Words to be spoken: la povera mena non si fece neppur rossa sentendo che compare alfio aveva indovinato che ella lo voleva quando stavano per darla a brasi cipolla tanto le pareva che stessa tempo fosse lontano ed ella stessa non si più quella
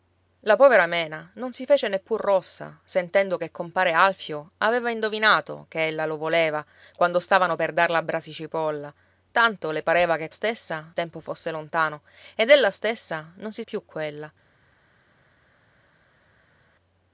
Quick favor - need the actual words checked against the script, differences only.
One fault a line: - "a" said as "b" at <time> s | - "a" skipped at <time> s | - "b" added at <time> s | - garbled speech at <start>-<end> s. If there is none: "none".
none